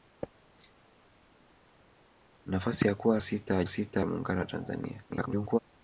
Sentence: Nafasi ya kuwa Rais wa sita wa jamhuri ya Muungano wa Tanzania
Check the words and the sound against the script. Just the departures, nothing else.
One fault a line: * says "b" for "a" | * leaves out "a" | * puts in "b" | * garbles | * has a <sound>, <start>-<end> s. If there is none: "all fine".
* says "Sita" for "Rais"
* leaves out "wa jamhuri"
* garbles